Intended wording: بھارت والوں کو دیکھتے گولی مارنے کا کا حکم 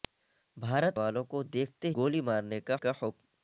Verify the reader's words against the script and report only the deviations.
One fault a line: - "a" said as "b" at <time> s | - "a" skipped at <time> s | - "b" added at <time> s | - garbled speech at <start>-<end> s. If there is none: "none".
none